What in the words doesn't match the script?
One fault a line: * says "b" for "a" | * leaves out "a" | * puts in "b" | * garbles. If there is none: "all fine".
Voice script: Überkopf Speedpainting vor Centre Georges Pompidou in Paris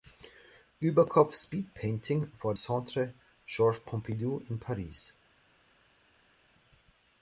all fine